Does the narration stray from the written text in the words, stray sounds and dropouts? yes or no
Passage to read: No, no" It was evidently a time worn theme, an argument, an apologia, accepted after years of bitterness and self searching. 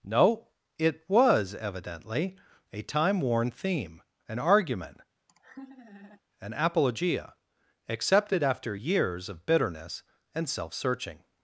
yes